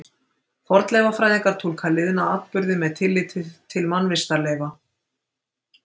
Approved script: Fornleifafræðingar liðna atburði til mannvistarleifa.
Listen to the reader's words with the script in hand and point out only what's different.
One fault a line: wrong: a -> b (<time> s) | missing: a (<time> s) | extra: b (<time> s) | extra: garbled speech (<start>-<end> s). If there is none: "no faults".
extra: túlka (1.6 s)
extra: með tilliti (2.9 s)